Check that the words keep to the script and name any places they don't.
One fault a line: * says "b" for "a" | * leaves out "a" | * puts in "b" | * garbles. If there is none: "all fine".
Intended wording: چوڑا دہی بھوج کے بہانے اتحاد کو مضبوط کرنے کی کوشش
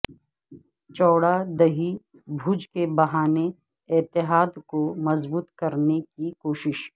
all fine